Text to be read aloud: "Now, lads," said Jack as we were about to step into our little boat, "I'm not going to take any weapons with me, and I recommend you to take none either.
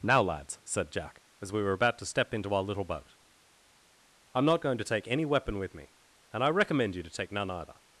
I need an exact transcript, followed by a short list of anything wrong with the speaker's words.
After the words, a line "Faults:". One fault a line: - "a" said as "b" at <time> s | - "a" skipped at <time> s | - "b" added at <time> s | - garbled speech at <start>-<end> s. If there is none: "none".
"Now, lads," said Jack as we were about to step into our little boat, "I'm not going to take any weapon with me, and I recommend you to take none either.
Faults:
- "weapons" said as "weapon" at 5.2 s